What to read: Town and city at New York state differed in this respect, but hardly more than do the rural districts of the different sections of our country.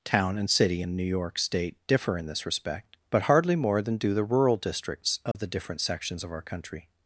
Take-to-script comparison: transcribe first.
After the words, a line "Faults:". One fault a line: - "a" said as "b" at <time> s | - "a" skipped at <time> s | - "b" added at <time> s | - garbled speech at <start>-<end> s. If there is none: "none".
Town and city in New York state differ in this respect, but hardly more than do the rural districts of the different sections of our country.
Faults:
- "at" said as "in" at 0.8 s
- "differed" said as "differ" at 1.9 s